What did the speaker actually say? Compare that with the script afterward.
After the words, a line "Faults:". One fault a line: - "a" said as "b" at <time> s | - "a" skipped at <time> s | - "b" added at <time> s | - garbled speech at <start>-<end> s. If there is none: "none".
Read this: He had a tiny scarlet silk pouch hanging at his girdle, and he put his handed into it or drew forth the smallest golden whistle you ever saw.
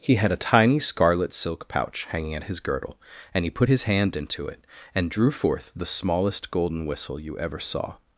He had a tiny scarlet silk pouch hanging at his girdle, and he put his hand into it and drew forth the smallest golden whistle you ever saw.
Faults:
- "handed" said as "hand" at 3.8 s
- "or" said as "and" at 4.9 s